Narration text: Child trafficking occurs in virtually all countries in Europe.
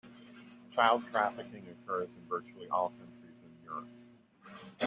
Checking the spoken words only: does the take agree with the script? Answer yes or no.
yes